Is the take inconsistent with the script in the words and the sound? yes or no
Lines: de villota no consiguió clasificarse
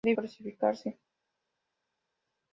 yes